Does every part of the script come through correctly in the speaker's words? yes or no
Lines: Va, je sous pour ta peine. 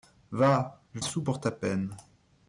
yes